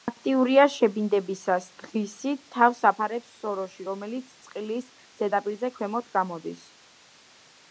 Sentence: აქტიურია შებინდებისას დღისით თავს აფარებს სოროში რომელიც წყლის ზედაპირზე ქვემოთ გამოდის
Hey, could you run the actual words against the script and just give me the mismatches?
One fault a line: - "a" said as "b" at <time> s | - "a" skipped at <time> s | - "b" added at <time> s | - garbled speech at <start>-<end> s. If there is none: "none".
none